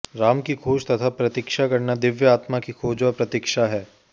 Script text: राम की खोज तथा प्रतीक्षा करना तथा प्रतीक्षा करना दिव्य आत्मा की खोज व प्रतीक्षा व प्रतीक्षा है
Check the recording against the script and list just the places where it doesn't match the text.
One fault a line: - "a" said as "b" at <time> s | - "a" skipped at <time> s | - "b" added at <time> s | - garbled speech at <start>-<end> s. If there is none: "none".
- "तथा प्रतीक्षा करना" skipped at 1.9 s
- "व प्रतीक्षा" skipped at 3.7 s